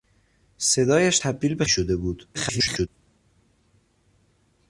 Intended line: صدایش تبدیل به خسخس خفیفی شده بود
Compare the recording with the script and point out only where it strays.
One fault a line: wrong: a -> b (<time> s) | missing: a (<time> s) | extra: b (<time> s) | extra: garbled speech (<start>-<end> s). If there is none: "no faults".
missing: خسخس خفیفی (1.6 s)
extra: garbled speech (2.3-2.9 s)